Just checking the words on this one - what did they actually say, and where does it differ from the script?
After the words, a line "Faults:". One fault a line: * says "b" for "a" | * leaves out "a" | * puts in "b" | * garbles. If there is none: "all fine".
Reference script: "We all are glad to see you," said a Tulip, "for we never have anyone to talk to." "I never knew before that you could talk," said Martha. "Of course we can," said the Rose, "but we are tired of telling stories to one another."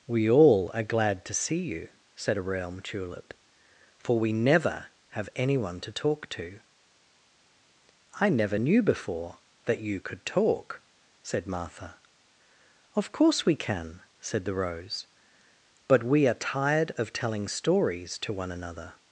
"We all are glad to see you," said a realm Tulip, "for we never have anyone to talk to." "I never knew before that you could talk," said Martha. "Of course we can," said the Rose, "but we are tired of telling stories to one another."
Faults:
* puts in "realm"